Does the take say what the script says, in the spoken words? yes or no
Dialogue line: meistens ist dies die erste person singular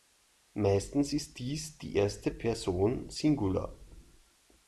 yes